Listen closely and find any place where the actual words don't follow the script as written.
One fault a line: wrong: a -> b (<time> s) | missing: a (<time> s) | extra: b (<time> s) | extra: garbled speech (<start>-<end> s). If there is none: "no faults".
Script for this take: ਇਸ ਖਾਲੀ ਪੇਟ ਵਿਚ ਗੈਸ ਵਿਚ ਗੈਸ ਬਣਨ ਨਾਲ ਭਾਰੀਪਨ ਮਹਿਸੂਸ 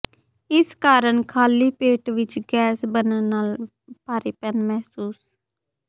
extra: ਕਾਰਨ (0.8 s)
missing: ਵਿਚ ਗੈਸ (2.9 s)